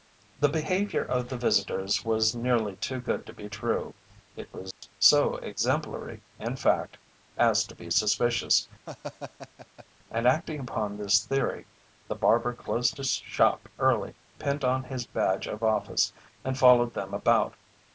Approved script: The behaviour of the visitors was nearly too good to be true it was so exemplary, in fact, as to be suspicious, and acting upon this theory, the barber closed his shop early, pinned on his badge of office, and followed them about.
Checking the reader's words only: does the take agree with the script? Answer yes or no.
yes